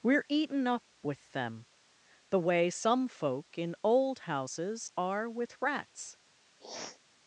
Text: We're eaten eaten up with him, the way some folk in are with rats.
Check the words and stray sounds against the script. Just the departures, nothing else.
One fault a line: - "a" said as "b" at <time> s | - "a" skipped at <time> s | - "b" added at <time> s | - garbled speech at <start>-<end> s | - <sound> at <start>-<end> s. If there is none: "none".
- "eaten" skipped at 0.7 s
- "him" said as "them" at 1.3 s
- "old houses" added at 3.8 s
- sniff at 6.6-7.0 s